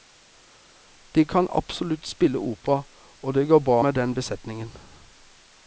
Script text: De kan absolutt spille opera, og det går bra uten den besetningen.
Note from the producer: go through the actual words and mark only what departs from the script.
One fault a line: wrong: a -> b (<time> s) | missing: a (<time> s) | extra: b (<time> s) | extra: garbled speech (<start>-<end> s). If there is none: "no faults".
wrong: uten -> med (3.8 s)